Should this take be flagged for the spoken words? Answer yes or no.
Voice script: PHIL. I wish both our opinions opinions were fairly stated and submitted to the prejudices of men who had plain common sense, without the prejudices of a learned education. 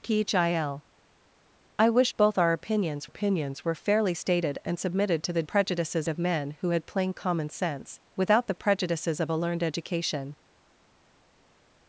no